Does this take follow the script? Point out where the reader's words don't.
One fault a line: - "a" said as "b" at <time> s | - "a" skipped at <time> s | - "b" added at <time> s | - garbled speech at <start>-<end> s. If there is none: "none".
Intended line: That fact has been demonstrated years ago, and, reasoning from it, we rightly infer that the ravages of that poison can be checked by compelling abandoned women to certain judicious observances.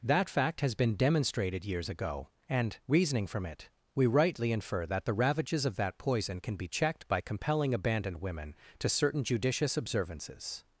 none